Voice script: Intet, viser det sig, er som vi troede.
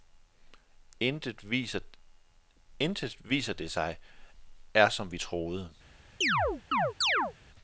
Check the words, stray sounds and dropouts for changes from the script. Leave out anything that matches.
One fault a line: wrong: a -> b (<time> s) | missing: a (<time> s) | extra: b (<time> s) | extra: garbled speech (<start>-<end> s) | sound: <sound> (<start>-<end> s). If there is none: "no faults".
sound: chirp (6.2-7.3 s)